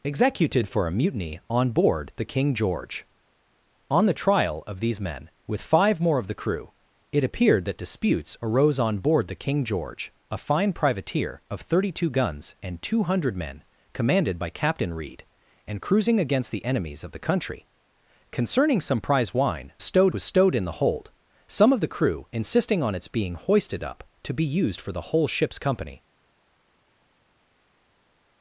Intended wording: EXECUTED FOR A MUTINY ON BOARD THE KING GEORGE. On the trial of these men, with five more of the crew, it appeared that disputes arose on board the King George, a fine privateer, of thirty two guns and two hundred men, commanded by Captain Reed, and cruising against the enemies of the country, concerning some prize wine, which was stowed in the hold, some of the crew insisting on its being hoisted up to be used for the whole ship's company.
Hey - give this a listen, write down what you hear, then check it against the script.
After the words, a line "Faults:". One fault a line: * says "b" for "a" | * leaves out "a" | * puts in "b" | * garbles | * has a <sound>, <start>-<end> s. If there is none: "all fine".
EXECUTED FOR A MUTINY ON BOARD THE KING GEORGE. On the trial of these men, with five more of the crew, it appeared that disputes arose on board the King George, a fine privateer, of thirty two guns and two hundred men, commanded by Captain Reed, and cruising against the enemies of the country, concerning some prize wine, stowed was stowed in the hold, some of the crew insisting on its being hoisted up to be used for the whole ship's company.
Faults:
* says "stowed" for "which"